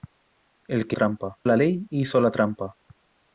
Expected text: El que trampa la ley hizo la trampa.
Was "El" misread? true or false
false